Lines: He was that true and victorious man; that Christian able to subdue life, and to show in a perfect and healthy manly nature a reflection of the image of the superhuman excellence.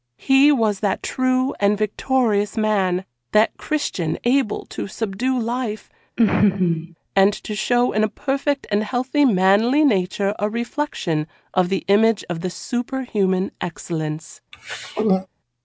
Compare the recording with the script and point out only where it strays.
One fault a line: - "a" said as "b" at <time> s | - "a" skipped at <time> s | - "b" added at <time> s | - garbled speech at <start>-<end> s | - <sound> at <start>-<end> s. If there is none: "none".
- laugh at 6.2-7.0 s
- throat clearing at 14.5-15.3 s